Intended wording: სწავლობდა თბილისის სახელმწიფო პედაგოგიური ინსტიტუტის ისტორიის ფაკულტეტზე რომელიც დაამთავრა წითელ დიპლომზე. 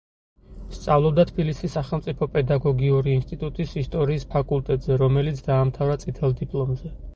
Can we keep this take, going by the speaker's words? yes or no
yes